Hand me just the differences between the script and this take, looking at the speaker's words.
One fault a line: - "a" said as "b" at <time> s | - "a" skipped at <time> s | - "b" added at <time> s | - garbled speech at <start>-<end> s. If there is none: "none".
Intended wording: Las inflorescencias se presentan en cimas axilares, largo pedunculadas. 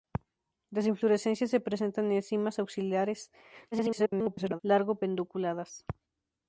- garbled speech at 3.7-4.6 s